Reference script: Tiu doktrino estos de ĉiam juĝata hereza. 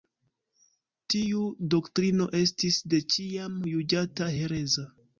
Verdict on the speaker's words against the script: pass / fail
fail